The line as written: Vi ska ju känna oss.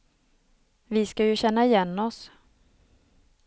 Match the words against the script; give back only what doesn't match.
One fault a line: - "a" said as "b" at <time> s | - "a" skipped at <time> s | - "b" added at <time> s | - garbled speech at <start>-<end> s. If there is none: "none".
- "igen" added at 1.6 s